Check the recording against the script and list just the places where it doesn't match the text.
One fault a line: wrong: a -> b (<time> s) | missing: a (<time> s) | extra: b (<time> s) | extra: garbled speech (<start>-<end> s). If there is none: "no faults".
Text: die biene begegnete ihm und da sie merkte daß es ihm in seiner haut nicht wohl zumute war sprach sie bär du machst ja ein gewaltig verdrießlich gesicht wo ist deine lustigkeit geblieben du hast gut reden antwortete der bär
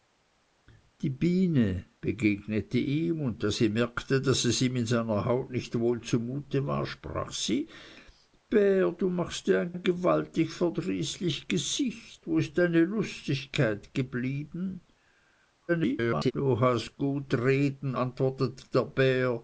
extra: ein (9.7 s)
extra: garbled speech (15.7-16.3 s)